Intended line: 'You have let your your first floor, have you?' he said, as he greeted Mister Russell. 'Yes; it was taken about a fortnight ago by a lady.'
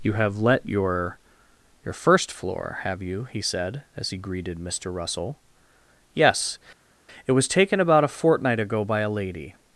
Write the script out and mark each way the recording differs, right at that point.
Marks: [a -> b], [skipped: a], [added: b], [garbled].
'You have let your your first floor, have you?' he said, as he greeted Mister Russell. 'Yes; it was taken about a fortnight ago by a lady.'